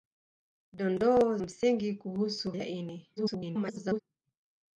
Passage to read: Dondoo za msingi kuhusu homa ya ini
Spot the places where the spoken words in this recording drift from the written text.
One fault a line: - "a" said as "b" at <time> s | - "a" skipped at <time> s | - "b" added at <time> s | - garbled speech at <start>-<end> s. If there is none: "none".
- "za" skipped at 1.4 s
- "homa" skipped at 2.5 s
- garbled speech at 3.2-4.0 s